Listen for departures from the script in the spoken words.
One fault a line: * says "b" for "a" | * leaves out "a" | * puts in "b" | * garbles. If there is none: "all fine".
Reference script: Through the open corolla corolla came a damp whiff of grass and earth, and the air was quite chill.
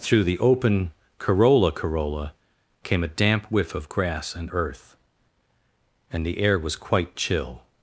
all fine